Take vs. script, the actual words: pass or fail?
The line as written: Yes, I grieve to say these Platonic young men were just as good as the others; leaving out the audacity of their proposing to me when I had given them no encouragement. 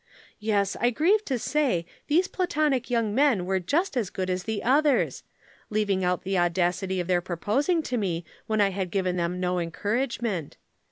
pass